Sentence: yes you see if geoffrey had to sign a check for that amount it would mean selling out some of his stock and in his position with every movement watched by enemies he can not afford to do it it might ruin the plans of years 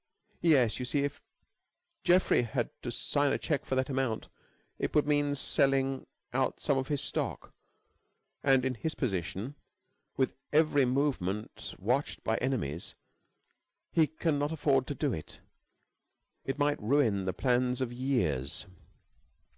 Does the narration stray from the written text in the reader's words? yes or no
no